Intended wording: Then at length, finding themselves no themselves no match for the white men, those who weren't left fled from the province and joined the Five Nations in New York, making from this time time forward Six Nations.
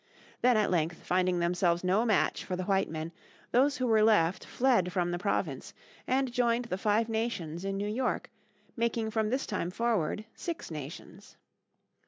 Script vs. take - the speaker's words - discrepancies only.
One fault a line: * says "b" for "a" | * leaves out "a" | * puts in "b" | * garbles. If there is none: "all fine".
* leaves out "themselves no"
* says "were" for "weren't"
* leaves out "time"